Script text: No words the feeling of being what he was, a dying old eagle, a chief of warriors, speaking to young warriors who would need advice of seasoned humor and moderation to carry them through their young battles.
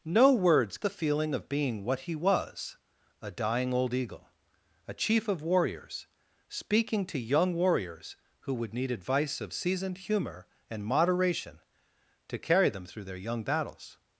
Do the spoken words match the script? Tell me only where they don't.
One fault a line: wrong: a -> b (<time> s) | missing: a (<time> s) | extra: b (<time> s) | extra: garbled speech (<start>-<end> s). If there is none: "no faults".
no faults